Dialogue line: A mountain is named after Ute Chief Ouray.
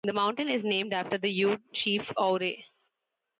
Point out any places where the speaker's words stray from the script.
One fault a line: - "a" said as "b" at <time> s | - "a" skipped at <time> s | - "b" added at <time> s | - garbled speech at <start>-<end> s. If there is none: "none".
- "A" said as "The" at 0.0 s
- "the" added at 1.2 s